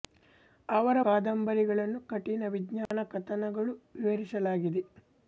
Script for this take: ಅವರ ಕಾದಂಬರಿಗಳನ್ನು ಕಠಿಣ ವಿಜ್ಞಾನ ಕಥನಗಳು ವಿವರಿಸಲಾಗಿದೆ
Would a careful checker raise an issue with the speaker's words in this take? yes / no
no